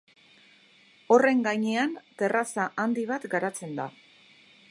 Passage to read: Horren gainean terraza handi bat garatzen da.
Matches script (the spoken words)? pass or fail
pass